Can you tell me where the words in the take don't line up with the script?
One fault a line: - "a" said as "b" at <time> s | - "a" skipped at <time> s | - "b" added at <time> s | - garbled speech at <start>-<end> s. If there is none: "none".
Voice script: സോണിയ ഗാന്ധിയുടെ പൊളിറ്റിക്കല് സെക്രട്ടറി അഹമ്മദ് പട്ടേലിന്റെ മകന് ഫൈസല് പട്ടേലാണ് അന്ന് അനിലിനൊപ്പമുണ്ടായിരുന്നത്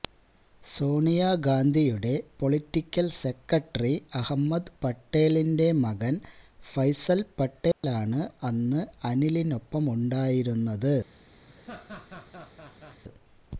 none